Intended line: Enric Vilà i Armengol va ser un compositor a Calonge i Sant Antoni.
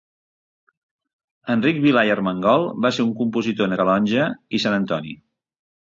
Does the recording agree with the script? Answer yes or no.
yes